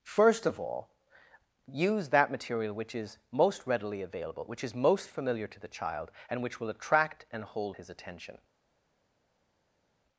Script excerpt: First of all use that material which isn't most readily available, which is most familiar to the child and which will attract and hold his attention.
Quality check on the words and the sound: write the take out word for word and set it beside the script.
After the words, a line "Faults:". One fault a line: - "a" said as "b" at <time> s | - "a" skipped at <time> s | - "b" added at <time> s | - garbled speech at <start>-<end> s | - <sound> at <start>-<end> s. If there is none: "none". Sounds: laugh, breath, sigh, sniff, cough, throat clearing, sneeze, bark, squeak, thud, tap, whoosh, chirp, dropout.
First of all use that material which is most readily available, which is most familiar to the child and which will attract and hold his attention.
Faults:
- "isn't" said as "is" at 3.0 s